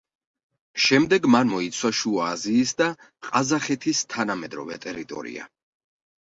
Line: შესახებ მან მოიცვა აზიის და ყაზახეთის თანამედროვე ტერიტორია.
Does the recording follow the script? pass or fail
fail